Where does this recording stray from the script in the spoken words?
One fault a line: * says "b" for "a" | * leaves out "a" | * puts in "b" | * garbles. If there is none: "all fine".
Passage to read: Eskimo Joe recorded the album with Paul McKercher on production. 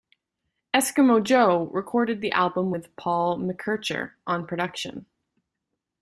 all fine